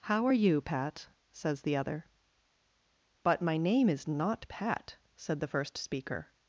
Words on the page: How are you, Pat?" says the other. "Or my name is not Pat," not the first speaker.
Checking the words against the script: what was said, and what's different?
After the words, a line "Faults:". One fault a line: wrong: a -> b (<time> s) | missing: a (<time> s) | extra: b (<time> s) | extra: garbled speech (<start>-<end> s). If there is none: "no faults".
How are you, Pat?" says the other. "But my name is not Pat," said the first speaker.
Faults:
wrong: Or -> But (3.2 s)
wrong: not -> said (5.2 s)